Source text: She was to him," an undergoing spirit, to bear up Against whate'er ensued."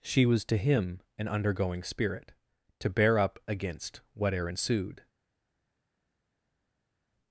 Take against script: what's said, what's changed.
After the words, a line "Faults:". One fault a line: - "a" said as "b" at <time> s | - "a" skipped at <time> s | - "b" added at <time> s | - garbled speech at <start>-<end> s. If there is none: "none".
She was to him," an undergoing spirit, to bear up Against whate'er ensued."
Faults:
none